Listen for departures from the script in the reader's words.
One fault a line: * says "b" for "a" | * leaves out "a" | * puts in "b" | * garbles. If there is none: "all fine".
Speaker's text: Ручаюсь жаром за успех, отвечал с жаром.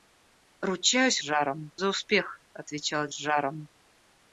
all fine